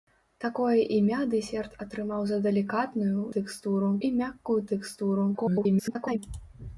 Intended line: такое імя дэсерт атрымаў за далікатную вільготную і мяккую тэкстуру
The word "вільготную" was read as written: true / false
false